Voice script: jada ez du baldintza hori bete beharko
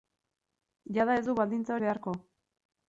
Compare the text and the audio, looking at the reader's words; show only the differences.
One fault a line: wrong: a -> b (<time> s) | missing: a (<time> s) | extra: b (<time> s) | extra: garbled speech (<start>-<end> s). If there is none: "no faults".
missing: hori bete (1.7 s)